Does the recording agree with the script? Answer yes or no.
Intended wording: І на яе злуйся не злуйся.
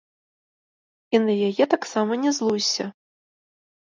no